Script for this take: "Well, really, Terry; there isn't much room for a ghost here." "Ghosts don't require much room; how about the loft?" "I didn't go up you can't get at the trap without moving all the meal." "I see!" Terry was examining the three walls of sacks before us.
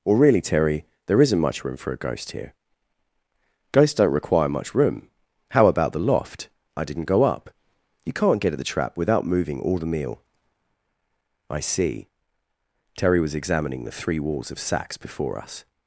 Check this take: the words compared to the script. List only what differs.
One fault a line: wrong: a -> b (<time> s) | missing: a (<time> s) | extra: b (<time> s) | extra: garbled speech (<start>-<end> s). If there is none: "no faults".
wrong: Well -> Or (0.1 s)